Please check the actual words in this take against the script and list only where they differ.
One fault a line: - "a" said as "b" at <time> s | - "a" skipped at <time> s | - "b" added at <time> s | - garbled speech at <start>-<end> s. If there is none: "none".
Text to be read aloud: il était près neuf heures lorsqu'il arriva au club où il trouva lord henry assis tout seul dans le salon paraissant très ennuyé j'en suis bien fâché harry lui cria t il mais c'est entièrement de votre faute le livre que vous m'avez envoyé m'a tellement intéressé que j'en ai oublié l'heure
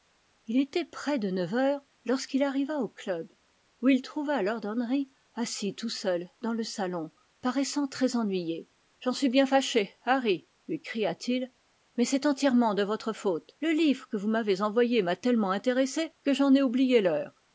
- "de" added at 1.2 s